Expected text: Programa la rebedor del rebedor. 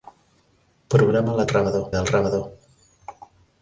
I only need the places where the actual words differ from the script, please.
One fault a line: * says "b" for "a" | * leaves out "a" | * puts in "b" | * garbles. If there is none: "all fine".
all fine